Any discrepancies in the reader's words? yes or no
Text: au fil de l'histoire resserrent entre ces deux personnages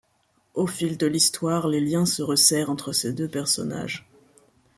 yes